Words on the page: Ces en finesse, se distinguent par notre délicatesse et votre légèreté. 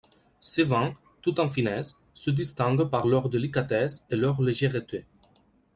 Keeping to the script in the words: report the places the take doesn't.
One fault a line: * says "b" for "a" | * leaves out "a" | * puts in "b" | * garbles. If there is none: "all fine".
* puts in "vins tout"
* says "leur" for "notre"
* says "leur" for "votre"